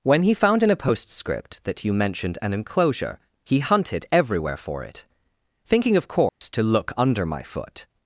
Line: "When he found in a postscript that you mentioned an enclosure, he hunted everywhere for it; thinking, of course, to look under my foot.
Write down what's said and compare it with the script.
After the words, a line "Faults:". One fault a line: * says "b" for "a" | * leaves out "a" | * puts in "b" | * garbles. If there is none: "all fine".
"When he found in a postscript that you mentioned an enclosure, he hunted everywhere for it; thinking, of course, to look under my foot.
Faults:
all fine